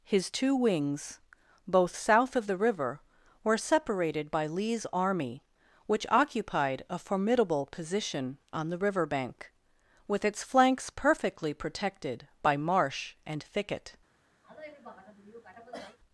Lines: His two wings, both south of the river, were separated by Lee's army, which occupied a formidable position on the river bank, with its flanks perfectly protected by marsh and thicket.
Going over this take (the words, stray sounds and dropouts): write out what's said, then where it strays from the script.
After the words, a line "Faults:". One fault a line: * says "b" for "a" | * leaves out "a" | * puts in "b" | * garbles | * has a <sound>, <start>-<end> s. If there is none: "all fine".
His two wings, both south of the river, were separated by Lee's army, which occupied a formidable position on the river bank, with its flanks perfectly protected by marsh and thicket.
Faults:
* has a cough, 14.4-16.0 s